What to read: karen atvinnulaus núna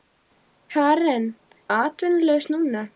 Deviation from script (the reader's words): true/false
false